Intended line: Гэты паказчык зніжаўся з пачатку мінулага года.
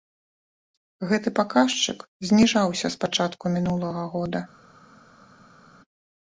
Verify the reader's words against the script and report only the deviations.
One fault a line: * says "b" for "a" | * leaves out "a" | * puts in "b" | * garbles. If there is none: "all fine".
all fine